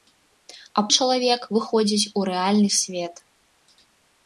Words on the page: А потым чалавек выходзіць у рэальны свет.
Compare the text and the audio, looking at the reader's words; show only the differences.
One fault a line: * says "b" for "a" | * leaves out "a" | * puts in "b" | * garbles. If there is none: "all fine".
* leaves out "потым"